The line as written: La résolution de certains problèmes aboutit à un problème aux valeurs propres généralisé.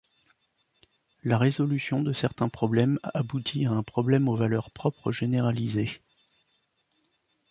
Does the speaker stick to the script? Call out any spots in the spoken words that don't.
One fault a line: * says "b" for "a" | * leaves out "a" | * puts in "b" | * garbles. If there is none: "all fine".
all fine